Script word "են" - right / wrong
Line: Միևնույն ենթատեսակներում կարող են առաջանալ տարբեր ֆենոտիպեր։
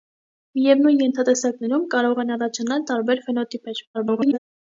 right